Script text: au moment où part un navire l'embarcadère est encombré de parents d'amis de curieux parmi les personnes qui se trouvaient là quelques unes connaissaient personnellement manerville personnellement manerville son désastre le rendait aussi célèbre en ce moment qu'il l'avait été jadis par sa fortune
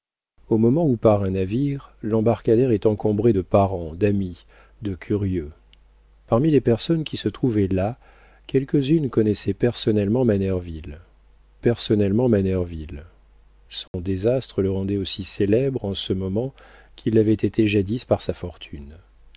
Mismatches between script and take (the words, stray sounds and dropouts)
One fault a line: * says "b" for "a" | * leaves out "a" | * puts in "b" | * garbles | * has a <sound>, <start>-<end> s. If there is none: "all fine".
* has a dropout, 13.9-13.9 s